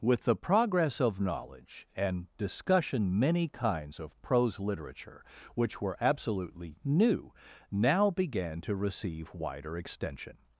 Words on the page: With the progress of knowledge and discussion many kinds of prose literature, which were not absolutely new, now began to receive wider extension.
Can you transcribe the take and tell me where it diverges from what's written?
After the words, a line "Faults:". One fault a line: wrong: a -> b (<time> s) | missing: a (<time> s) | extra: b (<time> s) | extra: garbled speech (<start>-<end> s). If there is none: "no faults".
With the progress of knowledge and discussion many kinds of prose literature, which were absolutely new, now began to receive wider extension.
Faults:
missing: not (6.0 s)